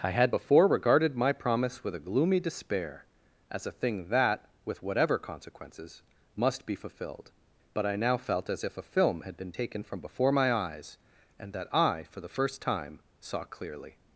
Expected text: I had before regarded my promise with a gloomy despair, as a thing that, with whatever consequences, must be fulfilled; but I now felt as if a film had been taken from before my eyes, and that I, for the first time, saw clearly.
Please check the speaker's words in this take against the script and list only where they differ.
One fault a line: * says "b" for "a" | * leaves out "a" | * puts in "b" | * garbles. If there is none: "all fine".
all fine